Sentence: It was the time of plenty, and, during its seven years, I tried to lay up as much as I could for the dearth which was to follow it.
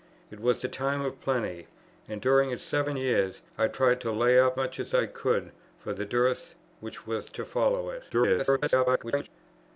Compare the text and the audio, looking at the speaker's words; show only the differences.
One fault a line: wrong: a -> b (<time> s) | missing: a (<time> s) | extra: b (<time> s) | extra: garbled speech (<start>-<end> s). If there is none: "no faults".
missing: as (4.6 s)
extra: garbled speech (8.1-9.3 s)